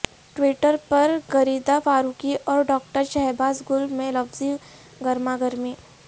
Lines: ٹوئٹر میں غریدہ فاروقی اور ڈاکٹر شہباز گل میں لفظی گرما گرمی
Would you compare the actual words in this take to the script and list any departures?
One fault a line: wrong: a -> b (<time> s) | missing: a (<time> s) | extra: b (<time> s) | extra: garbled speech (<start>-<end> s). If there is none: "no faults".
wrong: میں -> پر (0.9 s)